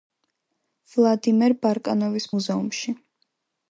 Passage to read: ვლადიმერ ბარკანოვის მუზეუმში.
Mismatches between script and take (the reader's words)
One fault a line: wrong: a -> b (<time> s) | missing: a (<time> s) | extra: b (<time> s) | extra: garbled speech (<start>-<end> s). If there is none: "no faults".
no faults